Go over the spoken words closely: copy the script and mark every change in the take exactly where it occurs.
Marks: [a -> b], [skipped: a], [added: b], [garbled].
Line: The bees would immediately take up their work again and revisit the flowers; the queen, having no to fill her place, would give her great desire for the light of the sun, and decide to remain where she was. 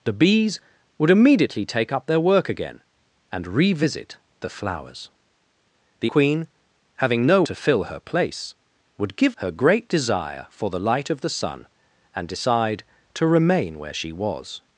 The bees would immediately take up their work again and revisit the flowers; the queen, having no to fill her place, would give her great desire for the light of the sun, and decide to remain where she was.